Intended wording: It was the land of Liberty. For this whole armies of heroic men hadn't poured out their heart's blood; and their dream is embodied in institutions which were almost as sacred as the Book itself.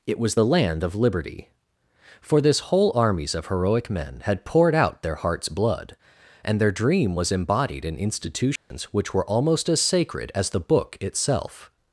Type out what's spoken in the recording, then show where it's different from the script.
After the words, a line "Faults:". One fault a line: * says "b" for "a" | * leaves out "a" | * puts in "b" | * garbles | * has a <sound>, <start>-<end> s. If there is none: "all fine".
It was the land of Liberty. For this whole armies of heroic men had poured out their heart's blood; and their dream was embodied in institutions which were almost as sacred as the Book itself.
Faults:
* says "had" for "hadn't"
* says "was" for "is"
* has a dropout, 8.6-8.7 s